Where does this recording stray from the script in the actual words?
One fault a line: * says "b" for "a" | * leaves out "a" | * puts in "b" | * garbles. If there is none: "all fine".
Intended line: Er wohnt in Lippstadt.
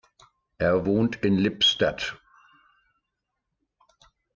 all fine